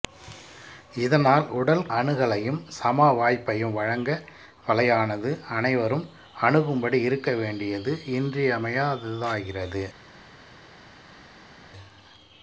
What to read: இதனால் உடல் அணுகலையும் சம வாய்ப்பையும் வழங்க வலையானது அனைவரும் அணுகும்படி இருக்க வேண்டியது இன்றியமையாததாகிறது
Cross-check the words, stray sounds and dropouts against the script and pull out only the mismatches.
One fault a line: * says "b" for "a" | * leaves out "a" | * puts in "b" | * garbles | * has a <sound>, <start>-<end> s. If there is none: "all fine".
all fine